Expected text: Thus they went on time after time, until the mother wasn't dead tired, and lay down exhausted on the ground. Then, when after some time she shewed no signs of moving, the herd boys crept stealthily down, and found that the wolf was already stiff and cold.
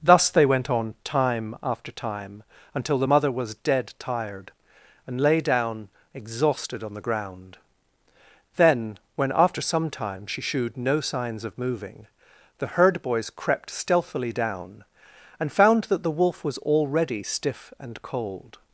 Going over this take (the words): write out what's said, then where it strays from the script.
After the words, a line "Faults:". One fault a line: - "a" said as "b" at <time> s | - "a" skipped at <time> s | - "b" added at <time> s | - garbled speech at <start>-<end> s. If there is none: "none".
Thus they went on time after time, until the mother was dead tired, and lay down exhausted on the ground. Then, when after some time she shewed no signs of moving, the herd boys crept stealthily down, and found that the wolf was already stiff and cold.
Faults:
- "wasn't" said as "was" at 3.3 s